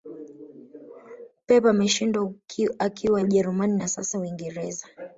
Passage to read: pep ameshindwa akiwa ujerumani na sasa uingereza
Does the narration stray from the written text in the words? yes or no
no